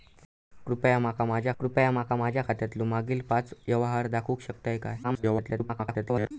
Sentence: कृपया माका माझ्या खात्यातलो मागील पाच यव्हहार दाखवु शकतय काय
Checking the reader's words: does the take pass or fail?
fail